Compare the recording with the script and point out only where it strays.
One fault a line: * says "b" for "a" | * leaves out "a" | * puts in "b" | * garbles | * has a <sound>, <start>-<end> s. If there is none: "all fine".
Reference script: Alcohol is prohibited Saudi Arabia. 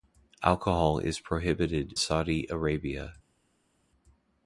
all fine